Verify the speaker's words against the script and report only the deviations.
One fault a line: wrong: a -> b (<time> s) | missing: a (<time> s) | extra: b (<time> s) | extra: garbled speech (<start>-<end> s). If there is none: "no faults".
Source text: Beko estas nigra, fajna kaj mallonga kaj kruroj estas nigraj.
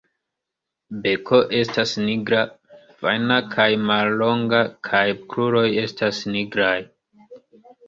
no faults